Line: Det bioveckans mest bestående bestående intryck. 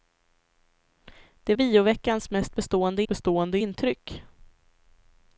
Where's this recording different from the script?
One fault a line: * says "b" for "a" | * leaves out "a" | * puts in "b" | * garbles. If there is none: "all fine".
all fine